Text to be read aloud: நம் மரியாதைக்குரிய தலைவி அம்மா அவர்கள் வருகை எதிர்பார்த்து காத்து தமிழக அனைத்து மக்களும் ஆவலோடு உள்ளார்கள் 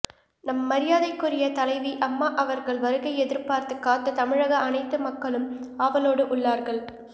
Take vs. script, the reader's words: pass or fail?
pass